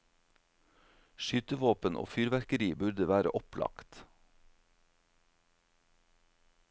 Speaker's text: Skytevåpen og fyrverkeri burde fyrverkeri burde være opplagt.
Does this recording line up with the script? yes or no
no